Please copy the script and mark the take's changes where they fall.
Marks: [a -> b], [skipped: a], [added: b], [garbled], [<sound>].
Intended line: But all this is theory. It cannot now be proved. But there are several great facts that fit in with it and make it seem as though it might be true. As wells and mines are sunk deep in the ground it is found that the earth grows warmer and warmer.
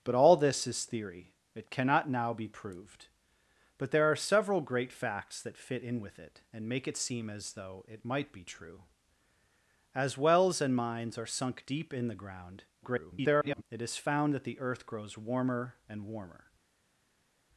But all this is theory. It cannot now be proved. But there are several great facts that fit in with it and make it seem as though it might be true. As wells and mines are sunk deep in the ground [garbled] it is found that the earth grows warmer and warmer.